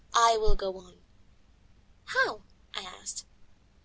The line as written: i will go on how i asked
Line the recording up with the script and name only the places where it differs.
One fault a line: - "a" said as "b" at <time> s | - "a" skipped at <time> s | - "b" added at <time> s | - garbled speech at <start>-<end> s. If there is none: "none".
none